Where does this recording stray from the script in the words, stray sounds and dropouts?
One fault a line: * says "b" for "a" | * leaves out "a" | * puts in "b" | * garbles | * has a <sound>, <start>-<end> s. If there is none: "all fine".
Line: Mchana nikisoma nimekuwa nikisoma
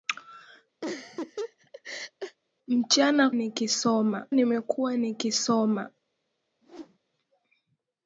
* has a laugh, 0.8-2.4 s
* has a whoosh, 6.6-7.0 s